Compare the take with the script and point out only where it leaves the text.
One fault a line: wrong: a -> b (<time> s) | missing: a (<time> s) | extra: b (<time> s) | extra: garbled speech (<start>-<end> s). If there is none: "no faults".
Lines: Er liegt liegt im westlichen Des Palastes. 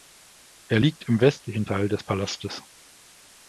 missing: liegt (1.1 s)
extra: Teil (1.6 s)